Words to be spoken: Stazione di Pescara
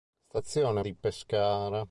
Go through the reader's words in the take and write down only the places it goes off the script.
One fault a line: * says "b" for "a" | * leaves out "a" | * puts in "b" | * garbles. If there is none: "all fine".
all fine